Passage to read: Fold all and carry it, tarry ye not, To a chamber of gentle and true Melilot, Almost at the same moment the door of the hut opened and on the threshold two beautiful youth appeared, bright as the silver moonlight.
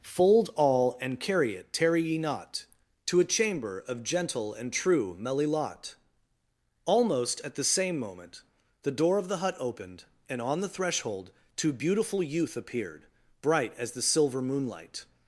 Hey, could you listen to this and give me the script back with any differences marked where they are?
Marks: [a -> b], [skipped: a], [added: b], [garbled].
Fold all and carry it, tarry ye not, To a chamber of gentle and true Melilot, Almost at the same moment the door of the hut opened and on the threshold two beautiful youth appeared, bright as the silver moonlight.